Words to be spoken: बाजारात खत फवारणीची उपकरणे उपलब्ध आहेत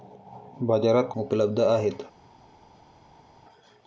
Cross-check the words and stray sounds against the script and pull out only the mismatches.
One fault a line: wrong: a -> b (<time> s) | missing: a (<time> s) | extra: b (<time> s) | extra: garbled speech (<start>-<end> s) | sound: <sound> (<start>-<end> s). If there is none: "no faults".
missing: खत फवारणीची उपकरणे (1.1 s)